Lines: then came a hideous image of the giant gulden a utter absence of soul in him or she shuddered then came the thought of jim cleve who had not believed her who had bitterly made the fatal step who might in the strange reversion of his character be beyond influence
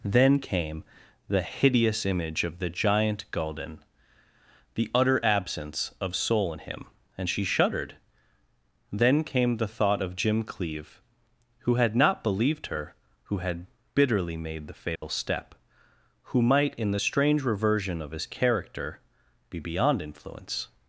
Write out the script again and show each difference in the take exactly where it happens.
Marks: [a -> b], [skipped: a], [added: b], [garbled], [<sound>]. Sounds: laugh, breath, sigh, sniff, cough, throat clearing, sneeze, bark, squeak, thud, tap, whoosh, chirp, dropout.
then came [a -> the] hideous image of the giant gulden [a -> the] utter absence of soul in him [or -> and] she shuddered then came the thought of jim cleve who had not believed her who had bitterly made the fatal [dropout] step who might in the strange reversion of his character be beyond influence